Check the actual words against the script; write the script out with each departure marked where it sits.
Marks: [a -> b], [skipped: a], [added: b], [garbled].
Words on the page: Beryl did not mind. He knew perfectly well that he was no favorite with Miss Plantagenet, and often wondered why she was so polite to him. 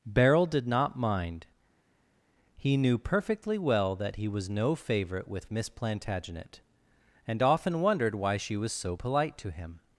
Beryl did not mind. He knew perfectly well that he was no favorite with Miss Plantagenet, and often wondered why she was so polite to him.